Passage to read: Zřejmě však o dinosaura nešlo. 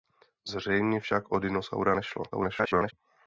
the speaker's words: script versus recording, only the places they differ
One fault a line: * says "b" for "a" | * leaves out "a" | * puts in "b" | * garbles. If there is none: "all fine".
* garbles